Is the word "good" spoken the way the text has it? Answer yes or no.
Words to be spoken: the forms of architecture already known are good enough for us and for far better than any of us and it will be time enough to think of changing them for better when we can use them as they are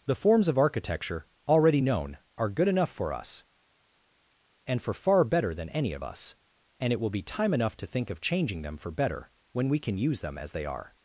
yes